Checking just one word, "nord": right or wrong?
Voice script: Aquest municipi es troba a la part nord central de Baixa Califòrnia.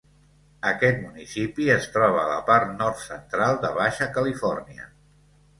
right